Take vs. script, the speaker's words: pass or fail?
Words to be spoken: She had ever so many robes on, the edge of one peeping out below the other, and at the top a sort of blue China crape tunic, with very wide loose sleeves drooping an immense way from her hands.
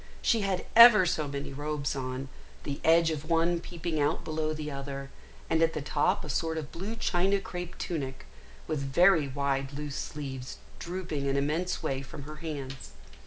pass